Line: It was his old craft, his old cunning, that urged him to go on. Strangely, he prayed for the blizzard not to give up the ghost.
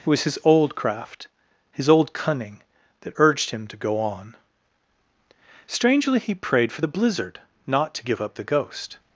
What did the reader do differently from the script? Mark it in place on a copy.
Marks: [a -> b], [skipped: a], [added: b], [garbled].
It was his old craft, his old cunning, that urged him to go on. Strangely, he prayed for the blizzard not to give up the ghost.